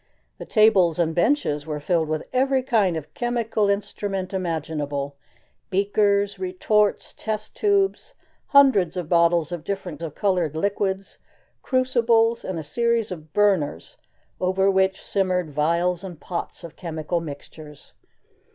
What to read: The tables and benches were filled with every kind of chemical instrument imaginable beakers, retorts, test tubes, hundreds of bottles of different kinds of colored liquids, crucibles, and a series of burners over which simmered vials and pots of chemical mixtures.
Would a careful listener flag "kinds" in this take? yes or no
yes